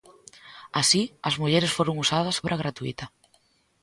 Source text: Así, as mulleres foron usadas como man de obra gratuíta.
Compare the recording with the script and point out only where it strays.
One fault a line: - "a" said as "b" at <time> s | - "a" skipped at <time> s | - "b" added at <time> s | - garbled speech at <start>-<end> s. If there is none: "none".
- "como man de" skipped at 2.4 s